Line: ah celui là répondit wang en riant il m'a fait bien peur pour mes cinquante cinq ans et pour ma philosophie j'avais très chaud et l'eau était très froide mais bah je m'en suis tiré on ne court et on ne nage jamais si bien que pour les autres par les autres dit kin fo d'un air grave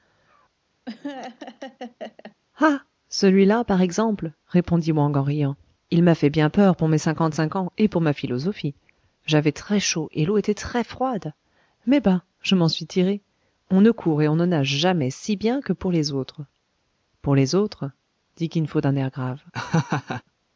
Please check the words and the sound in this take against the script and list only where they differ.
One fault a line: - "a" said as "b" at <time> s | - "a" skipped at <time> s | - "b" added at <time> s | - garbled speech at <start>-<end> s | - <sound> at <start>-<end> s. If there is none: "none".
- laugh at 0.9-2.4 s
- "par exemple" added at 3.6 s
- "par" said as "pour" at 17.2 s
- laugh at 19.5-20.2 s